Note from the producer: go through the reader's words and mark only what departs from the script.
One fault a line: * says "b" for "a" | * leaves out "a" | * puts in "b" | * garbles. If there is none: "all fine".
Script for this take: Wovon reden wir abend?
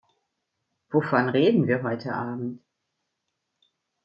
* puts in "heute"